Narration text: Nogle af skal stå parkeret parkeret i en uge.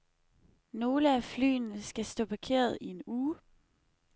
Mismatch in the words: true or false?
true